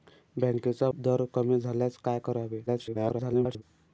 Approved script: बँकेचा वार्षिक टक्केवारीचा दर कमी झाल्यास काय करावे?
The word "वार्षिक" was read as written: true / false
false